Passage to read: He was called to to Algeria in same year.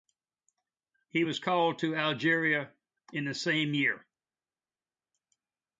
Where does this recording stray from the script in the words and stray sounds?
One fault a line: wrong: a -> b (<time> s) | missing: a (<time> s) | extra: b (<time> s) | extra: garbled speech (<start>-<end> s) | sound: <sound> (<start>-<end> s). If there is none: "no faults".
missing: to (2.0 s)
extra: the (3.2 s)